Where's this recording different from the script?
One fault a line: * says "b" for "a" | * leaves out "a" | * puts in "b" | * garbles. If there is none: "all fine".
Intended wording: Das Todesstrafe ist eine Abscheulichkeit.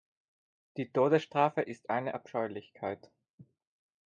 * says "Die" for "Das"